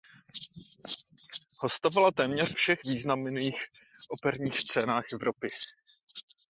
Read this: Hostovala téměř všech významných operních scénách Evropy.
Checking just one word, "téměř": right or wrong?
right